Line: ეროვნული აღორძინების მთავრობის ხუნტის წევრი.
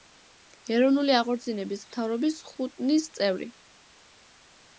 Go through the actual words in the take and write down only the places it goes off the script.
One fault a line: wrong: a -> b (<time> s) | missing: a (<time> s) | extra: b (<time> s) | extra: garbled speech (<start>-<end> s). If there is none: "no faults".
no faults